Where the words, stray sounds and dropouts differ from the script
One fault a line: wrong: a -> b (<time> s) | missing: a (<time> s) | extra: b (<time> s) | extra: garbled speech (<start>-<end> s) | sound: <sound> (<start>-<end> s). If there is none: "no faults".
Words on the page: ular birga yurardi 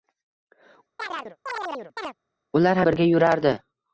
sound: chirp (1.0-2.1 s)